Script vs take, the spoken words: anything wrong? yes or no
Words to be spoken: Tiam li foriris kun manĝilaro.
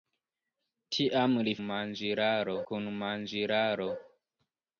yes